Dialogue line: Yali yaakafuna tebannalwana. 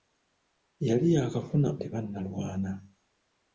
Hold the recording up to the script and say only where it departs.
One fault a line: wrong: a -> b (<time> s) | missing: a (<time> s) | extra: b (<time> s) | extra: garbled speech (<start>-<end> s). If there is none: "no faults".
no faults